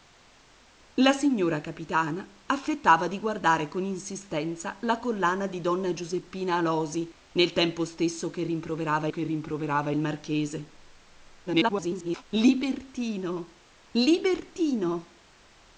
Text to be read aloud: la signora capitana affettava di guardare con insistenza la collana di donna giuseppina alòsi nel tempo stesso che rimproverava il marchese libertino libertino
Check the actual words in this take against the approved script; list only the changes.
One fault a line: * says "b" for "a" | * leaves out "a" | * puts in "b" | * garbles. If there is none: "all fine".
* puts in "che rimproverava"
* garbles